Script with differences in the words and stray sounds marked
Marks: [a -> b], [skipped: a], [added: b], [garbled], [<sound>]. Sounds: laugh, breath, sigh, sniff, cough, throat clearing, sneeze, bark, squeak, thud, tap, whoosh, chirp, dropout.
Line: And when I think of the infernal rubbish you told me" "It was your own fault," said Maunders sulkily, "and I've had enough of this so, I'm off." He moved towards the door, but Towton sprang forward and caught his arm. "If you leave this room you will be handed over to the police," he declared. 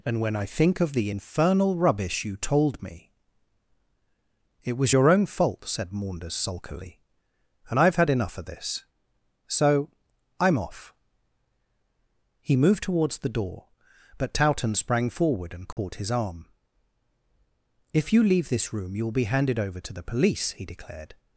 And when I think of the infernal rubbish you told me" "It was your own fault," said Maunders sulkily, "and I've had enough of this so, I'm off." He moved towards the door, but Towton sprang forward and caught [dropout] his arm. "If you leave this room you will be handed over to the police," he declared.